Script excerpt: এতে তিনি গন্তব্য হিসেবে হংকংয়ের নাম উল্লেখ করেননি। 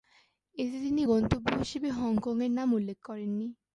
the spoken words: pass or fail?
pass